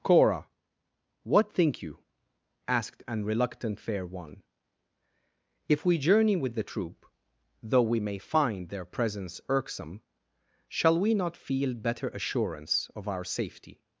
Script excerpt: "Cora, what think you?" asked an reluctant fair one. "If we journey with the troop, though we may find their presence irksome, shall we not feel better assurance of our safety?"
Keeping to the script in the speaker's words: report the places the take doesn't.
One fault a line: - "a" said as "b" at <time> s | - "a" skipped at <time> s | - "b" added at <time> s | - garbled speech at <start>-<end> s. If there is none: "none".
none